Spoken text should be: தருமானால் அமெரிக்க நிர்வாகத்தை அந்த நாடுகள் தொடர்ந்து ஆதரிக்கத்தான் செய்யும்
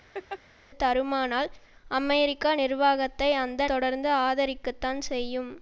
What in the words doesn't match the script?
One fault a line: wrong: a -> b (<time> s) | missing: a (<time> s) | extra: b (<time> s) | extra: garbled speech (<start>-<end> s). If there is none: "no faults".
missing: நாடுகள் (3.6 s)